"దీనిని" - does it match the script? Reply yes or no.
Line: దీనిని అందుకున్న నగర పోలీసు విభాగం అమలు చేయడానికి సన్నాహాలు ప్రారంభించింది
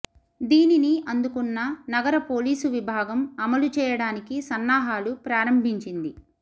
yes